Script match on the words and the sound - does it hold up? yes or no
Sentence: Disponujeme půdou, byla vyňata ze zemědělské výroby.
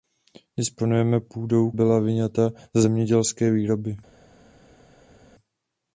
yes